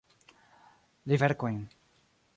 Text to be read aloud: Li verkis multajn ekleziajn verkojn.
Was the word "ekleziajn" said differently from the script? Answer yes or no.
yes